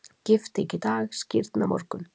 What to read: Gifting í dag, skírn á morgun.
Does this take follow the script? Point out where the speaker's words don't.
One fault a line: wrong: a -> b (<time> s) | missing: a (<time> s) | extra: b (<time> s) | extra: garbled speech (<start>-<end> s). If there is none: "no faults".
no faults